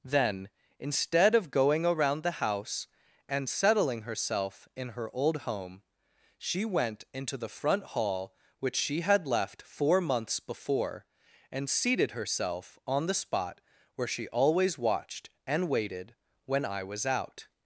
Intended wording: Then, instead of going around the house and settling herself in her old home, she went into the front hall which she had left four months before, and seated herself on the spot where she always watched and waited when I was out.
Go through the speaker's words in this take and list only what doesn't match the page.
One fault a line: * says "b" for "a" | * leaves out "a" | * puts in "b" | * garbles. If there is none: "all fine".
all fine